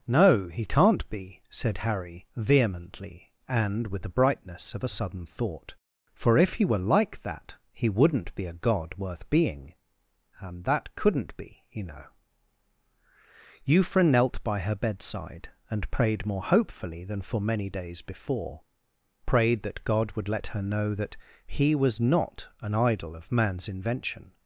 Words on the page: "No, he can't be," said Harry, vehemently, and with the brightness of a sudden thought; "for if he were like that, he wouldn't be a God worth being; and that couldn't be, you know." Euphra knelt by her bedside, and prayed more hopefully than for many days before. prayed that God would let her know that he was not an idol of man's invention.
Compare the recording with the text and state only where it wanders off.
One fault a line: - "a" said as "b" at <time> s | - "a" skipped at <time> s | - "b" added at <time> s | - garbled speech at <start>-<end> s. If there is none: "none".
none